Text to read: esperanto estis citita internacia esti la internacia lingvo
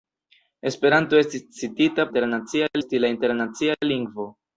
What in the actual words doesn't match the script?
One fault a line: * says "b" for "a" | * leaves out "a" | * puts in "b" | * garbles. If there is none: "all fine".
all fine